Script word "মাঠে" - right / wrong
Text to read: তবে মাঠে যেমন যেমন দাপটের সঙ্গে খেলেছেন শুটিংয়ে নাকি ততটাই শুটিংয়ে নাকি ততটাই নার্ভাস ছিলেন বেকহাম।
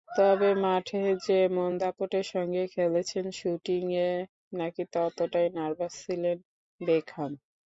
right